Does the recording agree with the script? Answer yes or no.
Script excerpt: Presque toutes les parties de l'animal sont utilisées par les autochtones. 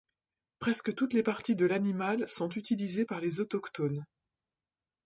yes